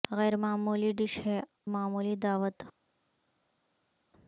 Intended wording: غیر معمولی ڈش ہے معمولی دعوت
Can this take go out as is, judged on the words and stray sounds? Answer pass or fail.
pass